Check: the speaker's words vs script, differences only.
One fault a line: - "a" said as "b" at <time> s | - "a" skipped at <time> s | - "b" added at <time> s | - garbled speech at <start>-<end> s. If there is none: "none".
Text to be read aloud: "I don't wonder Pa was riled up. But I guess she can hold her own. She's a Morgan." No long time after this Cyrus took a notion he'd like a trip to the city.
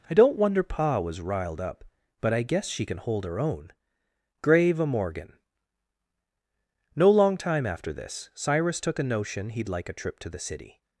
- "She's" said as "Grave" at 4.4 s